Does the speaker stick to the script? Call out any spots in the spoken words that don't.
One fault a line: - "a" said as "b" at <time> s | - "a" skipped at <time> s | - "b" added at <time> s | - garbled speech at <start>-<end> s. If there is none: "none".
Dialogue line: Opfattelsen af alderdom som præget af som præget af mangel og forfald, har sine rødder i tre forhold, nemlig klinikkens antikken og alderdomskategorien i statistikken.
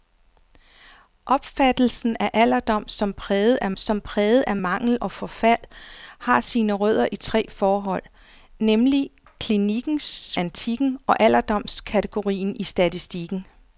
none